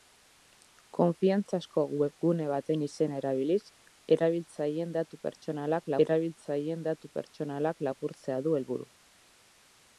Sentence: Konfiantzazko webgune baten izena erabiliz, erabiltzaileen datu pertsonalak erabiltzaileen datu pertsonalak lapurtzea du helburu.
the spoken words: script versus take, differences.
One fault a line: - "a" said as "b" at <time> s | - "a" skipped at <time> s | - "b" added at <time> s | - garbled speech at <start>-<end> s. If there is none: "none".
none